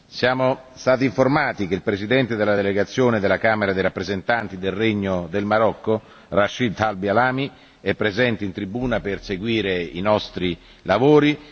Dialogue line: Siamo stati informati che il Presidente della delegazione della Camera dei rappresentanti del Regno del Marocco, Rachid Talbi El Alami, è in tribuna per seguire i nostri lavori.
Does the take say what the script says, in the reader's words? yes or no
no